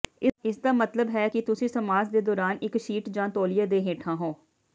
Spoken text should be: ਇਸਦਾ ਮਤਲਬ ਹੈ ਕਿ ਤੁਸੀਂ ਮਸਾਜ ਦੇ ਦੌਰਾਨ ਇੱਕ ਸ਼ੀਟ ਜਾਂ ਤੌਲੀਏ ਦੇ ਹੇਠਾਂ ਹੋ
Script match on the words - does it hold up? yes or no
yes